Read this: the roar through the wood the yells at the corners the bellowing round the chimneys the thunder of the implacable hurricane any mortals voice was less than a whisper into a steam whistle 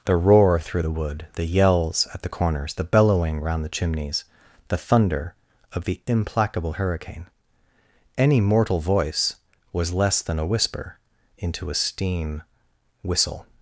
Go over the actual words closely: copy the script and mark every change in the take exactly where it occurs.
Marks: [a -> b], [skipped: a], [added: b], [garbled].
the roar through the wood the yells at the corners the bellowing round the chimneys the thunder of the implacable hurricane any [mortals -> mortal] voice was less than a whisper into a steam whistle